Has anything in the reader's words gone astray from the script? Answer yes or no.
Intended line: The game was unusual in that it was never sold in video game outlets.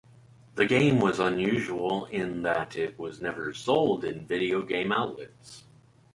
no